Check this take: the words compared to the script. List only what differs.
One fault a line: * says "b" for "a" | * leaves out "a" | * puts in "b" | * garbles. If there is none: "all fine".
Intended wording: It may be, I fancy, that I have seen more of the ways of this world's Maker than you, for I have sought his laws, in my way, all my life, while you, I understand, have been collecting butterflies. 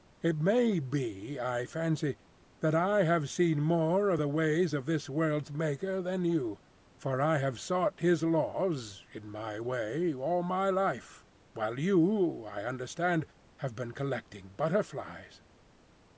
all fine